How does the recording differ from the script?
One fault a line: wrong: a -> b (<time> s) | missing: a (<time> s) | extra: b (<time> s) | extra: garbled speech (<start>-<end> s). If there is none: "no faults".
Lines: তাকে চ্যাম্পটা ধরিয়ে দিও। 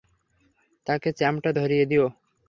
no faults